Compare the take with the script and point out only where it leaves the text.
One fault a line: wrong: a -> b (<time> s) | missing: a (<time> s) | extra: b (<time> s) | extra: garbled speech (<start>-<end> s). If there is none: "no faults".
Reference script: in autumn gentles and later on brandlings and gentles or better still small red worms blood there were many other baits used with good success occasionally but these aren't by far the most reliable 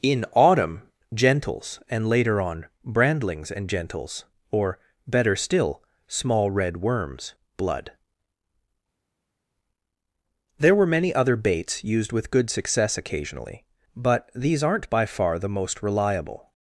no faults